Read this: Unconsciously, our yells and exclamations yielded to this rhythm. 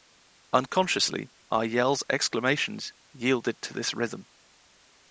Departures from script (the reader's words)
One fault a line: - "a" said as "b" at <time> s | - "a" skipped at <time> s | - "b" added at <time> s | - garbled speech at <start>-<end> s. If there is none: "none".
- "and" skipped at 2.0 s